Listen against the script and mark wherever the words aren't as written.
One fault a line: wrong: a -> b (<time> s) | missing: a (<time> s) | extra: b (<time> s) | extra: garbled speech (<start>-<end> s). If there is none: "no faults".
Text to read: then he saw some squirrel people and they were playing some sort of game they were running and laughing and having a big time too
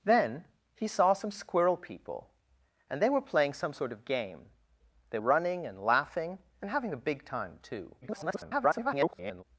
missing: were (5.2 s)
extra: garbled speech (8.0-9.4 s)